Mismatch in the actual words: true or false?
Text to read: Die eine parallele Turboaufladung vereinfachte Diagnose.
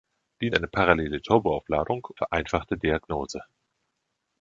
false